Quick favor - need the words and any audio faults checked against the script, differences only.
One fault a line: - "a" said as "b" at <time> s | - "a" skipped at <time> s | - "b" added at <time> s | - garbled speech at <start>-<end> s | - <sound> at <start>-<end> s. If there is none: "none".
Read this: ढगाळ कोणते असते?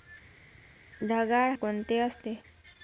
none